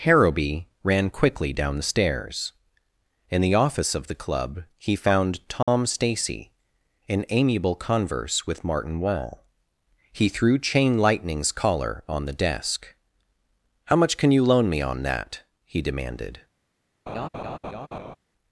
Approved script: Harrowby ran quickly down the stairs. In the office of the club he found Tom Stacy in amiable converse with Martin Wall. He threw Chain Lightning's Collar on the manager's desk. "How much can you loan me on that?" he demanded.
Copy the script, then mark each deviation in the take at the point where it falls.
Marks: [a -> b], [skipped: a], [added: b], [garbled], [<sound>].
Harrowby ran quickly down the stairs. In the office of the club he found Tom [dropout] Stacy in amiable converse with Martin Wall. He threw Chain Lightning's Collar on the [skipped: manager's] desk. "How much can you loan me on that?" he demanded. [laugh]